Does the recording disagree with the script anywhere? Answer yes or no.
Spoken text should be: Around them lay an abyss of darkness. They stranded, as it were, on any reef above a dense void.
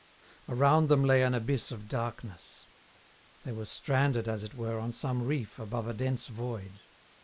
yes